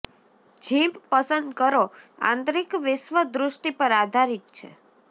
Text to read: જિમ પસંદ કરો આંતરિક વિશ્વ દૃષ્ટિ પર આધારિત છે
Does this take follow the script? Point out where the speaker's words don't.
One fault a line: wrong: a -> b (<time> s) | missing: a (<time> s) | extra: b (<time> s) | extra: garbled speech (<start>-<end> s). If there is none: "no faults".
no faults